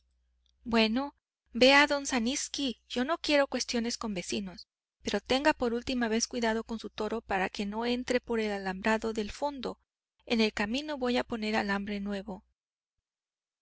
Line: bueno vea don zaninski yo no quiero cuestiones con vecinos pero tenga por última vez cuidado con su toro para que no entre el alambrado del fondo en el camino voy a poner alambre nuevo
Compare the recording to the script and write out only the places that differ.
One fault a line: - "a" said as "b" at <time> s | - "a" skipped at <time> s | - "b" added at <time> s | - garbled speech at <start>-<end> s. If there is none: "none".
- "por" added at 8.2 s